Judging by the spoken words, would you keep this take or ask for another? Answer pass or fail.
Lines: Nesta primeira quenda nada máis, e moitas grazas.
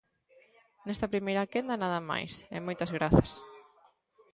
pass